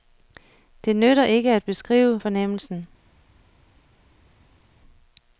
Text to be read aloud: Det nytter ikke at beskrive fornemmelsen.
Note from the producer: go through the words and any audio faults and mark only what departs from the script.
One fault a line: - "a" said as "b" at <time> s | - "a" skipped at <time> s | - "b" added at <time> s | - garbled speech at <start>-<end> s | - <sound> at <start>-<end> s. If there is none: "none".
none